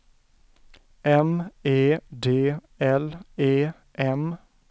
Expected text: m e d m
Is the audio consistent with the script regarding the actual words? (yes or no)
no